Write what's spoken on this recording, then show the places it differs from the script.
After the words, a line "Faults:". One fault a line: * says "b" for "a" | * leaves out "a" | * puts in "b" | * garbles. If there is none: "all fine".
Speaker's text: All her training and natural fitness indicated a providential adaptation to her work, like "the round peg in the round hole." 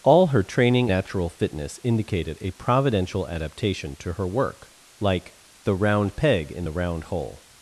All her training natural fitness indicated a providential adaptation to her work, like "the round peg in the round hole."
Faults:
* leaves out "and"